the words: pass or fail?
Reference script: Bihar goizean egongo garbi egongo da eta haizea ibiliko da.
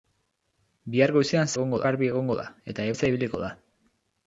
pass